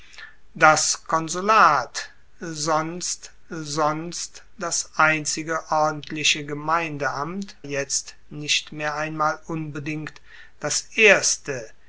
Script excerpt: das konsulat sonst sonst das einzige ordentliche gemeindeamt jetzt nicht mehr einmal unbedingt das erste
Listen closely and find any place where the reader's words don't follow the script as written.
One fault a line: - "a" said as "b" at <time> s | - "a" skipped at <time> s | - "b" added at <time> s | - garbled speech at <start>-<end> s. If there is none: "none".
none